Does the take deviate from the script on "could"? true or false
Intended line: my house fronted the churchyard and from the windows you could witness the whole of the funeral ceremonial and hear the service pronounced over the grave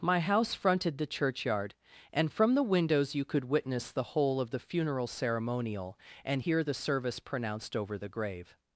false